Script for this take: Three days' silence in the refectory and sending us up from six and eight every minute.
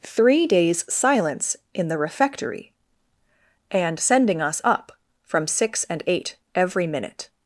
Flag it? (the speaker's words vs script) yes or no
no